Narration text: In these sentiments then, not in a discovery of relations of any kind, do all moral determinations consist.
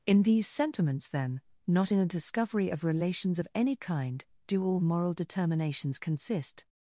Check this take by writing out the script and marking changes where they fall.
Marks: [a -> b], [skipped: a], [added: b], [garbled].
In these sentiments then, not in a discovery of relations of any kind, do all moral determinations consist.